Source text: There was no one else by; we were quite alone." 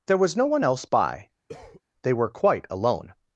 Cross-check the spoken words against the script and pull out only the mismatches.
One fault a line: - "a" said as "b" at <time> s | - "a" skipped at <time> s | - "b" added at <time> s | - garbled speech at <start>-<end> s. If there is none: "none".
- "we" said as "they" at 2.0 s